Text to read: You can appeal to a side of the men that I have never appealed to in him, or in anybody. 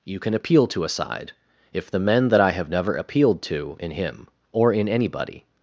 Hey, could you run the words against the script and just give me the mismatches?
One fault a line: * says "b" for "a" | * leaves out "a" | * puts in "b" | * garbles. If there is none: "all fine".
* says "if" for "of"